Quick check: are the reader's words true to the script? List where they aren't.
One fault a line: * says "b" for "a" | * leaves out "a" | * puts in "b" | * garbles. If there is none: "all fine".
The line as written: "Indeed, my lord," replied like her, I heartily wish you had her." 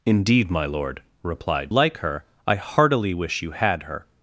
all fine